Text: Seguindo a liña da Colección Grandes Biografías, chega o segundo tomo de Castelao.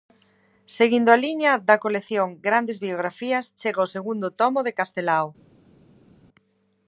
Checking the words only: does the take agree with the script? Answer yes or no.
yes